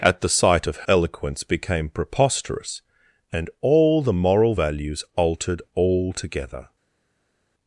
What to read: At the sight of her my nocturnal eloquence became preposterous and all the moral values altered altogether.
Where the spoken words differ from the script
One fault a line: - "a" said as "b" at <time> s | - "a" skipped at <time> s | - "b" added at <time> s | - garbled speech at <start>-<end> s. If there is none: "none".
- "her my nocturnal" skipped at 0.9 s